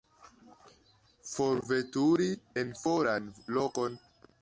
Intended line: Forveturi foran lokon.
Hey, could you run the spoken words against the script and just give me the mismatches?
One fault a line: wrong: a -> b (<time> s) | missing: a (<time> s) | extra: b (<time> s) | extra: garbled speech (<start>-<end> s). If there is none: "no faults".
extra: en (2.6 s)